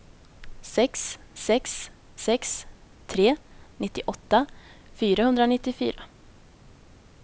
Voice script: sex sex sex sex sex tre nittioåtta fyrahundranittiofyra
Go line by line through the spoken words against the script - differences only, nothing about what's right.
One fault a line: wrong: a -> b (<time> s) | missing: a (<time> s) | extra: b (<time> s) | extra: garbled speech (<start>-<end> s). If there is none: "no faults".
missing: sex sex (2.6 s)